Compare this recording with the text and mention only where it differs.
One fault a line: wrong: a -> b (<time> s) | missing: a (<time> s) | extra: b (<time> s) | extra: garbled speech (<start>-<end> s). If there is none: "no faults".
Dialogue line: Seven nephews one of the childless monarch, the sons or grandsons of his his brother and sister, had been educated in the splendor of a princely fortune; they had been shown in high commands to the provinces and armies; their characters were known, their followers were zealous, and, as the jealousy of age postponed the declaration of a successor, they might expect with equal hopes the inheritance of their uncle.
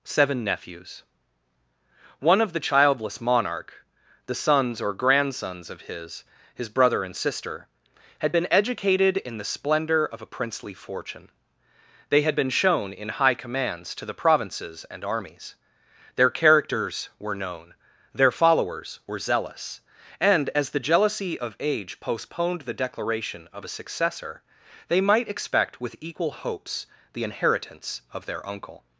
no faults